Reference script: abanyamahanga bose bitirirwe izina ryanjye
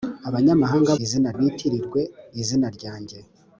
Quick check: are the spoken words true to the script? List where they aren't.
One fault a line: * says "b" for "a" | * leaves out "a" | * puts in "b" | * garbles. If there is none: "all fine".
* says "izina" for "bose"